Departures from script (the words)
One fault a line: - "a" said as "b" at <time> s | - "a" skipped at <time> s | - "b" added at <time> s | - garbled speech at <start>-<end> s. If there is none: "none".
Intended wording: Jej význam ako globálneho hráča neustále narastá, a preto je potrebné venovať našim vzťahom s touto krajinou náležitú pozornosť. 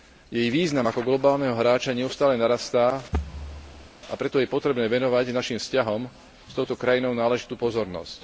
none